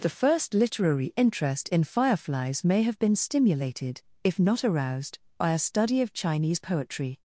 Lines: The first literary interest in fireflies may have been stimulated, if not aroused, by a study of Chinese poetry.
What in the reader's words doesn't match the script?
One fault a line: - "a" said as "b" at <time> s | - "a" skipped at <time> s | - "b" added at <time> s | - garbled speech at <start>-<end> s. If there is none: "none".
none